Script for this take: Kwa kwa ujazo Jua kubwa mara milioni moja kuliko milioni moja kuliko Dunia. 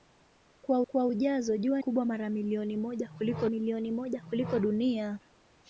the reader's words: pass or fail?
pass